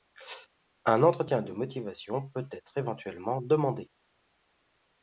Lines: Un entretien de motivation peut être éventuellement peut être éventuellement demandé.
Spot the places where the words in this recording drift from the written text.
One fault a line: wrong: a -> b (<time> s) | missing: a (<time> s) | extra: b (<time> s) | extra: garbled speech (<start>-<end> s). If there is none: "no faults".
missing: peut être éventuellement (3.4 s)